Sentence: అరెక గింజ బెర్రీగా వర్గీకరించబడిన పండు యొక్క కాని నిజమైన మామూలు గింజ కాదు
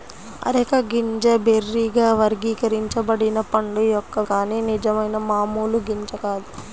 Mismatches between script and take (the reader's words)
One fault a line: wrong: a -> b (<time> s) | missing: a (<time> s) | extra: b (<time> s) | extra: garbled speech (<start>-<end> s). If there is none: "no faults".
no faults